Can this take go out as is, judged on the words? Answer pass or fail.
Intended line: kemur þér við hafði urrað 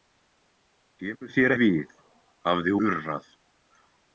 pass